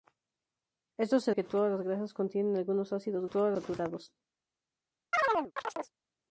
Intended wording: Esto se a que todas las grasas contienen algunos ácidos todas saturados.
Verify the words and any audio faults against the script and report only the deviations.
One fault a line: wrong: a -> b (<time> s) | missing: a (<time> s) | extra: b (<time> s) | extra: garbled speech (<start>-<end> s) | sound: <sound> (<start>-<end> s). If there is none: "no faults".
sound: chirp (5.1-5.9 s)